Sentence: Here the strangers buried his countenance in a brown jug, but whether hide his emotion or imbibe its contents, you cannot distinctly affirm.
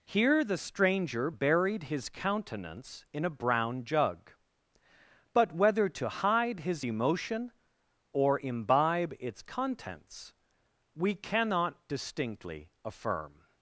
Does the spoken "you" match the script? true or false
false